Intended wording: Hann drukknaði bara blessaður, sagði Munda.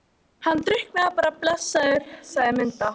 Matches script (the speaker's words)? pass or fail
pass